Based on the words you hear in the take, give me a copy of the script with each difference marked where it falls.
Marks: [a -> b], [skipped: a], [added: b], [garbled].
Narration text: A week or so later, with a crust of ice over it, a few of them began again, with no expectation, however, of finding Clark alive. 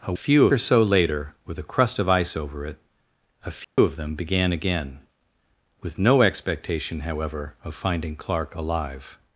A [week -> few] or so later, with a crust of ice over it, a few of them began again, with no expectation, however, of finding Clark alive.